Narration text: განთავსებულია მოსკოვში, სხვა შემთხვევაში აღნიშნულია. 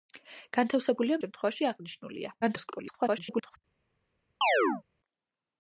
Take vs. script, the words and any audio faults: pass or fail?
fail